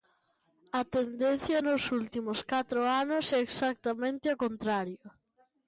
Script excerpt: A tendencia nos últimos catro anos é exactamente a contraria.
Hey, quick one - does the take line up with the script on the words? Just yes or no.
yes